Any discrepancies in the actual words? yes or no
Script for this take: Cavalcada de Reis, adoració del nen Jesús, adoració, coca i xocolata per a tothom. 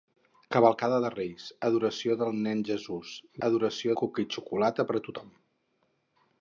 no